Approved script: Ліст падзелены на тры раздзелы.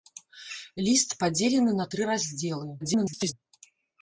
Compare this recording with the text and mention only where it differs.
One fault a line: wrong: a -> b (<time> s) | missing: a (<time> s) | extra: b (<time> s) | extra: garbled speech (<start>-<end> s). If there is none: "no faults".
extra: garbled speech (2.8-3.3 s)